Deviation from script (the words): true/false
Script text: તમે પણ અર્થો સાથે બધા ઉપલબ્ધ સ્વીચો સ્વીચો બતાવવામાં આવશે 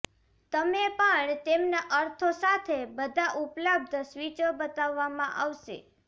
true